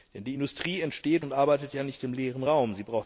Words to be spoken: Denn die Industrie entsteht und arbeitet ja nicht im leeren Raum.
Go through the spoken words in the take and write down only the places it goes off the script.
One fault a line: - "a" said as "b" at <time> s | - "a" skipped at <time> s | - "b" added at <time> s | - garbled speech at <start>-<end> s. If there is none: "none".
none